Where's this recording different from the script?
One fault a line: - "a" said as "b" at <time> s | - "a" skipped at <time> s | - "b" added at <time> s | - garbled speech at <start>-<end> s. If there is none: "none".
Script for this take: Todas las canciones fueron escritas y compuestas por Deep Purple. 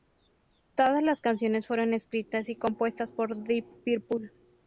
none